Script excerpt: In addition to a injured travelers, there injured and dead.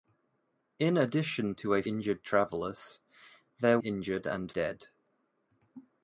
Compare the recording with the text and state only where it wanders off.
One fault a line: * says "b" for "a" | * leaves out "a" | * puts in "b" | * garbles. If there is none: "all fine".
all fine